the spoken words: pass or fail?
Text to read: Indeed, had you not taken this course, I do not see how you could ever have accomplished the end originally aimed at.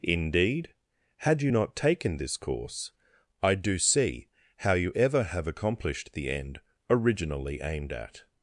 fail